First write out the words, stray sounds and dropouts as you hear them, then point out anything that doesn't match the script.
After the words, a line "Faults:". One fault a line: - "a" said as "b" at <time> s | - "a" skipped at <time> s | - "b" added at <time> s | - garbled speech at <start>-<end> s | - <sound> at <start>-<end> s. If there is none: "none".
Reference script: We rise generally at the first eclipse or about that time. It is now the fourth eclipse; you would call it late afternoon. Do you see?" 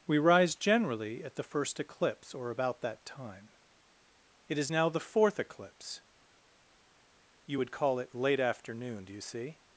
We rise generally at the first eclipse or about that time. It is now the fourth eclipse; you would call it late afternoon. Do you see?"
Faults:
none